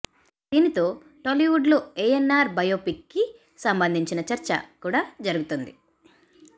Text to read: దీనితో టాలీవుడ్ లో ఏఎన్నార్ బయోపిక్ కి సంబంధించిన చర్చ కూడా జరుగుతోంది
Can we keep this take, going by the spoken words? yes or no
yes